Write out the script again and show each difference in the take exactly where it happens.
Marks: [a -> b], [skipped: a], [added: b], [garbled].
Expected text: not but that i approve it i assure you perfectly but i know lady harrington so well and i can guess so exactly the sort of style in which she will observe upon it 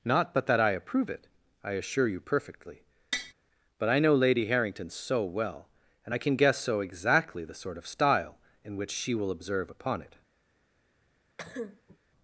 not but that i approve it i assure you perfectly but i know lady harrington so well and i can guess so exactly the sort of style in which she will observe upon it